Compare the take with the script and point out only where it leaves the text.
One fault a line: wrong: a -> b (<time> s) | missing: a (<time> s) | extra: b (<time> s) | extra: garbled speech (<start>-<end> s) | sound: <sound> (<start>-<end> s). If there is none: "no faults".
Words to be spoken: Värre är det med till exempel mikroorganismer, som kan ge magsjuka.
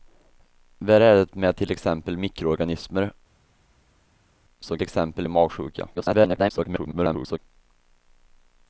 wrong: kan -> exempel (4.8 s)
extra: garbled speech (6.0-7.4 s)